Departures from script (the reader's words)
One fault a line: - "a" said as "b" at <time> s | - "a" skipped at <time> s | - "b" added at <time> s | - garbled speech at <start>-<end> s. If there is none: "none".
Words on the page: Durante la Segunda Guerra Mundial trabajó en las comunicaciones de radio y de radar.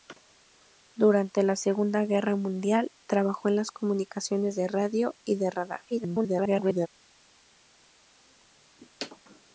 - garbled speech at 5.9-6.9 s